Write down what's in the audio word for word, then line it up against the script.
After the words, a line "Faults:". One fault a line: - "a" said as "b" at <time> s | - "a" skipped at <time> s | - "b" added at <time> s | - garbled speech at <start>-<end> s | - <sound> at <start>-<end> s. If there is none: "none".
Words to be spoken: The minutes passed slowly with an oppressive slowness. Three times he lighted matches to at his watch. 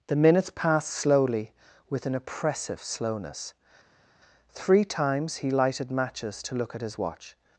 The minutes passed slowly with an oppressive slowness. Three times he lighted matches to look at his watch.
Faults:
- "look" added at 6.5 s